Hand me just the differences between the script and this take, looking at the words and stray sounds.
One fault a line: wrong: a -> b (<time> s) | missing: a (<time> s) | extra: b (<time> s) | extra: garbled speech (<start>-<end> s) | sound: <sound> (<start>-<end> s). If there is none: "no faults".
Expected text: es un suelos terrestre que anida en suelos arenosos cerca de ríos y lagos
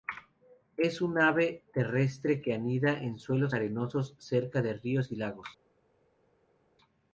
wrong: suelos -> ave (1.2 s)